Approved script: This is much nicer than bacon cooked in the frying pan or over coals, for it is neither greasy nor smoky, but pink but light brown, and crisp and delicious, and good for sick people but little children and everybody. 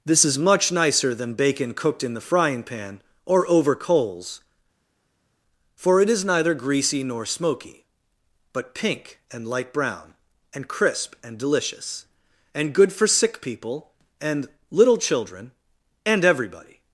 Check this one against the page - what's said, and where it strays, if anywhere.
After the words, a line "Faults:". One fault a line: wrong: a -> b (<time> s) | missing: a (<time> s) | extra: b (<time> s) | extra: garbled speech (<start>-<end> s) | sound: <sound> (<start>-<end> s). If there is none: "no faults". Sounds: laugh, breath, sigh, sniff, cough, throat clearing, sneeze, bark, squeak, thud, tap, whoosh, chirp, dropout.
This is much nicer than bacon cooked in the frying pan or over coals, for it is neither greasy nor smoky, but pink and light brown, and crisp and delicious, and good for sick people and little children and everybody.
Faults:
wrong: but -> and (9.3 s)
wrong: but -> and (14.2 s)